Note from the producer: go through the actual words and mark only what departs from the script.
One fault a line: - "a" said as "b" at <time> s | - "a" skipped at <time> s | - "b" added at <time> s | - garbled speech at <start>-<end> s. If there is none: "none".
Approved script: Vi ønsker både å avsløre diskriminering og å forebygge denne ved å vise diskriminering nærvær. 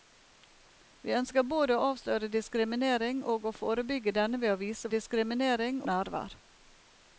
none